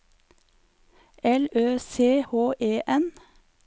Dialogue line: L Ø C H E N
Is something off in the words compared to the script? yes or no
no